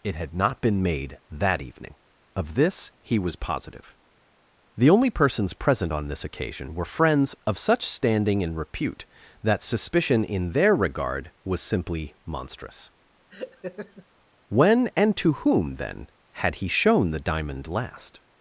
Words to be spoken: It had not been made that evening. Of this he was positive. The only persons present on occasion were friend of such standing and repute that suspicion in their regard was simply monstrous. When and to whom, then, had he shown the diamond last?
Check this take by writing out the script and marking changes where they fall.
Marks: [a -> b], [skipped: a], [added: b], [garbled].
It had not been made that evening. Of this he was positive. The only persons present on [added: this] occasion were [friend -> friends] of such standing and repute that suspicion in their regard was simply monstrous. When and to whom, then, had he shown the diamond last?